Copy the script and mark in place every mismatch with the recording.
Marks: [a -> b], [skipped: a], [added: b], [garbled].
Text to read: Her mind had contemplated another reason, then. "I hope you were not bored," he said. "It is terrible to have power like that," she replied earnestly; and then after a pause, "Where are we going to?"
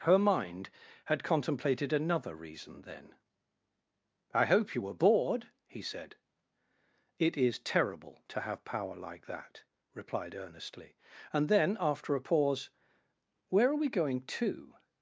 Her mind had contemplated another reason, then. "I hope you were [skipped: not] bored," he said. "It is terrible to have power like that," [skipped: she] replied earnestly; and then after a pause, "Where are we going to?"